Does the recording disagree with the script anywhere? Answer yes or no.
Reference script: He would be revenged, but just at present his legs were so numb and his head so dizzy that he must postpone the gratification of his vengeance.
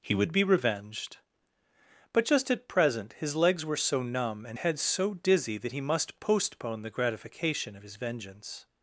yes